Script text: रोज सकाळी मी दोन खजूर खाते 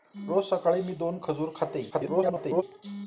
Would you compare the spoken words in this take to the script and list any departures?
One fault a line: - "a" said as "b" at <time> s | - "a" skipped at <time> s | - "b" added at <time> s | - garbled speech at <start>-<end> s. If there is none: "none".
- garbled speech at 1.9-2.6 s